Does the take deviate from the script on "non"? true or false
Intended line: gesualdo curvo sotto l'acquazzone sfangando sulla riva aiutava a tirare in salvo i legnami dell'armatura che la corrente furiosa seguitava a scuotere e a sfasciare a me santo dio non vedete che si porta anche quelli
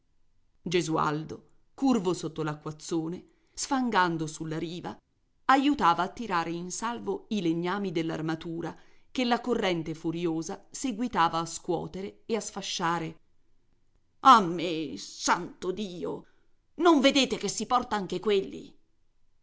false